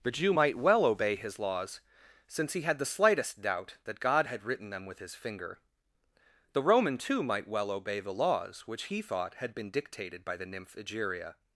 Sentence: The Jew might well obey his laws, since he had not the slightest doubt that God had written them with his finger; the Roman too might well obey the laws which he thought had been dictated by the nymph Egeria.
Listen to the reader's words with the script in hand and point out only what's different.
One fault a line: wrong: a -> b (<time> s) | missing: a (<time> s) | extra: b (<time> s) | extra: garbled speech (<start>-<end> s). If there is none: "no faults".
missing: not (2.8 s)